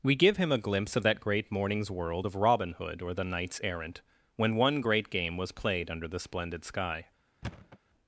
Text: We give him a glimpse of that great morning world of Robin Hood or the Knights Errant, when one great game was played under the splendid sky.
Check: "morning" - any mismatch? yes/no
yes